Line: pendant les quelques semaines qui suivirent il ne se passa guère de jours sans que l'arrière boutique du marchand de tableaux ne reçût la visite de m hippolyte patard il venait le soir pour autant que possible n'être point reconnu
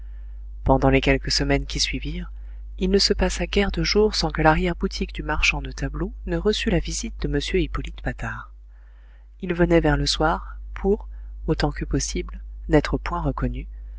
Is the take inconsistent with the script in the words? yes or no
yes